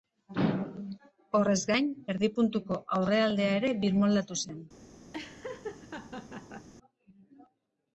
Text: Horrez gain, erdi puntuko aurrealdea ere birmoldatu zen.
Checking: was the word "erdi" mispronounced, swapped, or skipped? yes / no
no